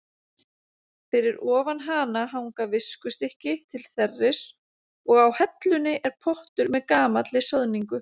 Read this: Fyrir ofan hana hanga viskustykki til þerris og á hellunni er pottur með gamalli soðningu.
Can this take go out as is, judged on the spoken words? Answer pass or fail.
pass